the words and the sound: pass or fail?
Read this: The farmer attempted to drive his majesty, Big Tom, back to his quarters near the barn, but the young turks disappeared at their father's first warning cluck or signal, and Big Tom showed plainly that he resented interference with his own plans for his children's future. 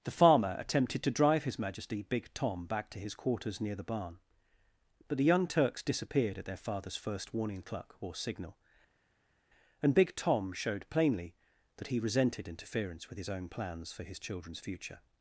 pass